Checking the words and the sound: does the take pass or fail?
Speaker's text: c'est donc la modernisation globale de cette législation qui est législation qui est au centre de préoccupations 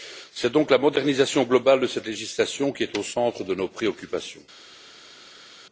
fail